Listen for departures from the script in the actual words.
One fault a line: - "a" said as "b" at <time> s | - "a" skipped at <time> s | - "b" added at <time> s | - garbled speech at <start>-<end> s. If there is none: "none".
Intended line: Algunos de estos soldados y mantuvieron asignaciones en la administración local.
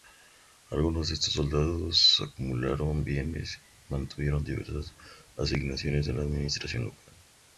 - "acumularon bienes" added at 2.3 s
- "diversas" added at 4.5 s